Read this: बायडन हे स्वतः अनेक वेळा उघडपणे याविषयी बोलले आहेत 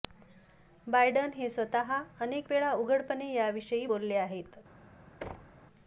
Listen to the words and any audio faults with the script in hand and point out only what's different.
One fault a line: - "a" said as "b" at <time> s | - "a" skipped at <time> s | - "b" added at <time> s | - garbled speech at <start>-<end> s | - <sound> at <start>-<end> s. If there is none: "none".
- thud at 5.2-5.7 s